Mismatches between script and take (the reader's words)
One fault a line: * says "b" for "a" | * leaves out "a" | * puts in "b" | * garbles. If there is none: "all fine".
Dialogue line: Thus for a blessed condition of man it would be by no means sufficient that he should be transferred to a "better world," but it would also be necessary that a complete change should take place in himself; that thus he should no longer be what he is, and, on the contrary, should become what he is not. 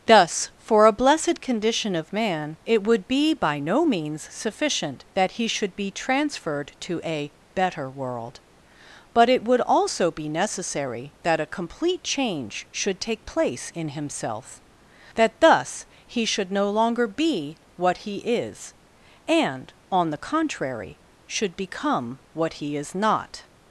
all fine